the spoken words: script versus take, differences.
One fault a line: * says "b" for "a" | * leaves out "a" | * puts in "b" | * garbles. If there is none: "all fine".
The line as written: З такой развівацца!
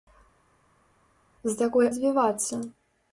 all fine